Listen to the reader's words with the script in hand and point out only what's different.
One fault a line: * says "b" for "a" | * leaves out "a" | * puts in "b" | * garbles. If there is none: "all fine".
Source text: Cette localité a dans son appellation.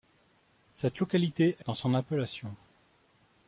all fine